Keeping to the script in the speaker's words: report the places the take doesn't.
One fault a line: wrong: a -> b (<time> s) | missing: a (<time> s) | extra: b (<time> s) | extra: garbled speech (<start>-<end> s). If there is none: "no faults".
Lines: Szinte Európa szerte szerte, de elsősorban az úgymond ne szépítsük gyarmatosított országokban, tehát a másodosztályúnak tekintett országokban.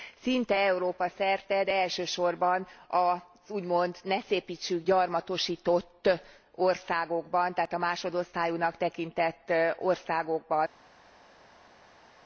missing: szerte (1.6 s)